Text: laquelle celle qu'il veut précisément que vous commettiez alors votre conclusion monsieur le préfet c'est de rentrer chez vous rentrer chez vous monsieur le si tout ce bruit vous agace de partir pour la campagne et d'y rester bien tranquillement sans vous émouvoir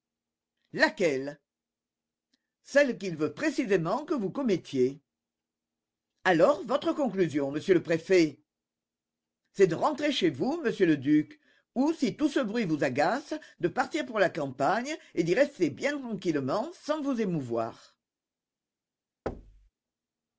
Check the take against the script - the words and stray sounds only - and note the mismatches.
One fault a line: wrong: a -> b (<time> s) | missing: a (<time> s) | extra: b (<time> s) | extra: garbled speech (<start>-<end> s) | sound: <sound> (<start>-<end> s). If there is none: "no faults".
wrong: rentrer chez vous monsieur le -> monsieur le duc ou (10.6 s)
sound: thud (19.3-19.7 s)